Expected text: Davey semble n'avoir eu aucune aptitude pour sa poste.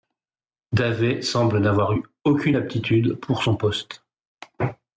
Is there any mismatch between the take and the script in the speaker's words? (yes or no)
yes